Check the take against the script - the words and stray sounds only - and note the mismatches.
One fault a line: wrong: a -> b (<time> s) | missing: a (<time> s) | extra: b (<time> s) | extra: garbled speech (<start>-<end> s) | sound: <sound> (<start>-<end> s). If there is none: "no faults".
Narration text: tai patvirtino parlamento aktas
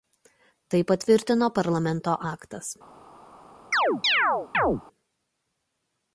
sound: chirp (3.7-4.8 s)